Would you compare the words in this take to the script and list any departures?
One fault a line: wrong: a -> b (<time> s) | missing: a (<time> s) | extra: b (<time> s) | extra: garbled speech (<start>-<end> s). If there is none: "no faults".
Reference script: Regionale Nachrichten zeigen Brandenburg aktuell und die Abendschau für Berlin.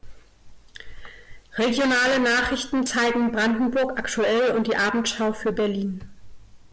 no faults